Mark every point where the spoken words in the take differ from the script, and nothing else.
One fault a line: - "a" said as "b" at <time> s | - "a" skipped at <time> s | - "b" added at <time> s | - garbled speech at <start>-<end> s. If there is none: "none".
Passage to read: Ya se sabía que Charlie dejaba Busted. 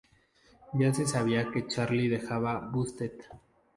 none